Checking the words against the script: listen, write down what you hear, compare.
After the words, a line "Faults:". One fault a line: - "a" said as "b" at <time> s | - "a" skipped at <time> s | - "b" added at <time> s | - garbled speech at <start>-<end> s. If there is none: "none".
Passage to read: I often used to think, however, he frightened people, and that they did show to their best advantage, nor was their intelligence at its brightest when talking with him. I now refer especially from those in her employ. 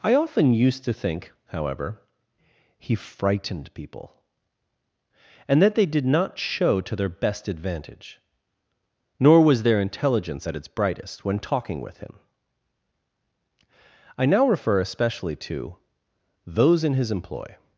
I often used to think, however, he frightened people, and that they did not show to their best advantage, nor was their intelligence at its brightest when talking with him. I now refer especially to those in his employ.
Faults:
- "not" added at 6.1 s
- "from" said as "to" at 15.3 s
- "her" said as "his" at 16.9 s